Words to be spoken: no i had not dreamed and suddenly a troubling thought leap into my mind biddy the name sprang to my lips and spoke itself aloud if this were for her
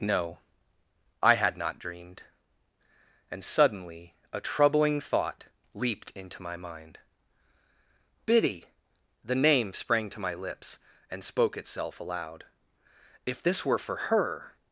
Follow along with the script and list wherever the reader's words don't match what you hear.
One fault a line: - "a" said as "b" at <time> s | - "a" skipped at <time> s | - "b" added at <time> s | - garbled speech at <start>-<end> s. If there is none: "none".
- "leap" said as "leaped" at 5.7 s